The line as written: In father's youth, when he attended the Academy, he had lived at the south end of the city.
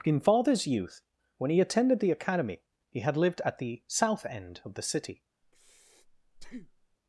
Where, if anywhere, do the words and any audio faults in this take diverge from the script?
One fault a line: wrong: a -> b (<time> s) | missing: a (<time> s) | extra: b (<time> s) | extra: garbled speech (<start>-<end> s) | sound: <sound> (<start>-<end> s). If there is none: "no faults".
sound: breath (5.4-7.0 s)